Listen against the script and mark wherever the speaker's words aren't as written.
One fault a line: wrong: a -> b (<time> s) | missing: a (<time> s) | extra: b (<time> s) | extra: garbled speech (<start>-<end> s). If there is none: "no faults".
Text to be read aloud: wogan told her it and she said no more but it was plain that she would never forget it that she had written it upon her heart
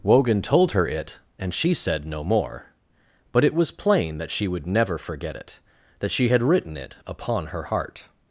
no faults